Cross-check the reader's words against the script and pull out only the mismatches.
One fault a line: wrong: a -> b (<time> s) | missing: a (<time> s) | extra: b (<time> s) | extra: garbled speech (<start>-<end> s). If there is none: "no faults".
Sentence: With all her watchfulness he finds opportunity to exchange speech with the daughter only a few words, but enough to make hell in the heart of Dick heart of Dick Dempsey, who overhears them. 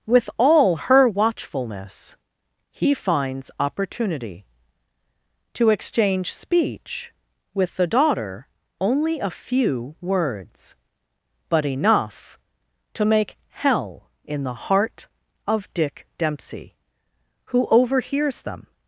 missing: heart of Dick (16.1 s)